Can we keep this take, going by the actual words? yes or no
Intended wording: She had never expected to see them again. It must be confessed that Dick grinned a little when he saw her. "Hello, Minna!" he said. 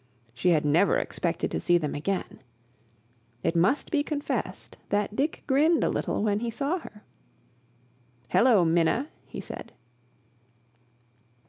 yes